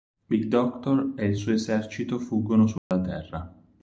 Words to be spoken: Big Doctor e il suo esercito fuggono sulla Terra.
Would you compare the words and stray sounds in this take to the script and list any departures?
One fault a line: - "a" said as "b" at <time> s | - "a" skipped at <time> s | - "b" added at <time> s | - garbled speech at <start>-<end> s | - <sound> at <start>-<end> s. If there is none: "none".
- dropout at 2.8-2.9 s